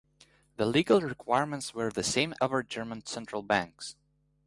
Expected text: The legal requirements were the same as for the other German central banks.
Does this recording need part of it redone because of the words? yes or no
yes